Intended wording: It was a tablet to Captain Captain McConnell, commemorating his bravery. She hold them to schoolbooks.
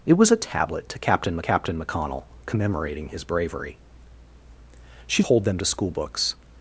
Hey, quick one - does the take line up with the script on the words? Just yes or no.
yes